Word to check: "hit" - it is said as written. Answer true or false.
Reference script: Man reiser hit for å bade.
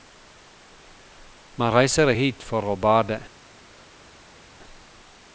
true